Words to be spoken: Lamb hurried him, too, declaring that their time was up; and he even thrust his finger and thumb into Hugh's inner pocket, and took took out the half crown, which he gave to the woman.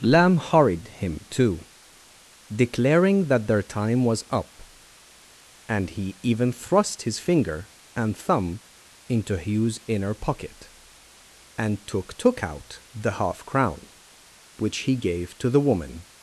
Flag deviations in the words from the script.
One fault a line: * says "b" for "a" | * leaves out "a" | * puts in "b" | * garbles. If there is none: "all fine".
all fine